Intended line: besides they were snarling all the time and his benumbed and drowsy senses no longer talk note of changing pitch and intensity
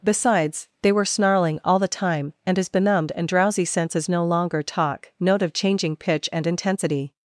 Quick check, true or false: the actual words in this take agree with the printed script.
true